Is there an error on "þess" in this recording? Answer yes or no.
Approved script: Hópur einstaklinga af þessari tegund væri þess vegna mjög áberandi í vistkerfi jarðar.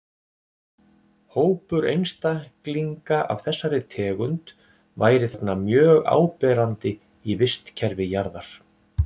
yes